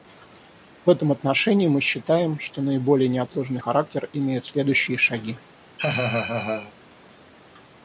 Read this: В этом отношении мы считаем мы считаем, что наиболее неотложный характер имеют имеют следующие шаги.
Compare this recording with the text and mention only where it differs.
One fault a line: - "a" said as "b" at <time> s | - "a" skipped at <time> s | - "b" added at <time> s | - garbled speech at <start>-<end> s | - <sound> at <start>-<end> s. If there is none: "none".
- "мы считаем" skipped at 2.4 s
- "имеют" skipped at 4.5 s
- laugh at 5.8-6.7 s